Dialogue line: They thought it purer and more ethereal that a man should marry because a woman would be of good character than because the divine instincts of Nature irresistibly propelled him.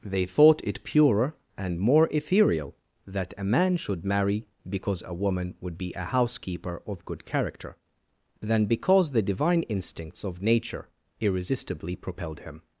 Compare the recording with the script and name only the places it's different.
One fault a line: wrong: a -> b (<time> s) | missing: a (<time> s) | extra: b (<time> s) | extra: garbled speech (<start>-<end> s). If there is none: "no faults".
extra: a housekeeper (5.9 s)